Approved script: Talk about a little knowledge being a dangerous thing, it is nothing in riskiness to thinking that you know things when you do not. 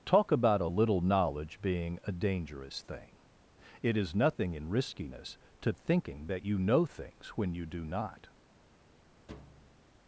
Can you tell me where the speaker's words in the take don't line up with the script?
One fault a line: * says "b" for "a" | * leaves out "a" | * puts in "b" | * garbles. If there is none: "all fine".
all fine